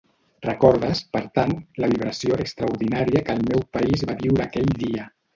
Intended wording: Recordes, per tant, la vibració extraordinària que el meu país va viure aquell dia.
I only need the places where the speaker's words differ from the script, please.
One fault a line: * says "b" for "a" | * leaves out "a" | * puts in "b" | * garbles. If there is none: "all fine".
all fine